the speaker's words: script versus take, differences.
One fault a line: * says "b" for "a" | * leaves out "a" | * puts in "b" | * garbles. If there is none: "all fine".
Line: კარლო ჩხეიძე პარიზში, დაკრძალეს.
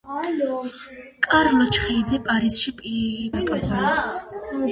all fine